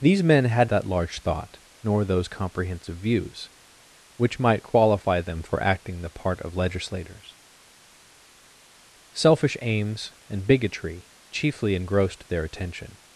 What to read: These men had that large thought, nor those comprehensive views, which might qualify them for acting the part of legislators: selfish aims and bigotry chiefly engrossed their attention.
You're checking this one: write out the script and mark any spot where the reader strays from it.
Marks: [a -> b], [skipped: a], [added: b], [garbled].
These men had that large thought, nor those comprehensive views, which might qualify them for acting the part of legislators: selfish aims and bigotry chiefly engrossed their attention.